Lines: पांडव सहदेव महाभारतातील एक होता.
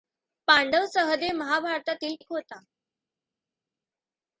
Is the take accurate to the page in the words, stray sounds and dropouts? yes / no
yes